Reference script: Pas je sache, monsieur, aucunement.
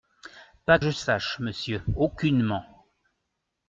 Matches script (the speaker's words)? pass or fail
pass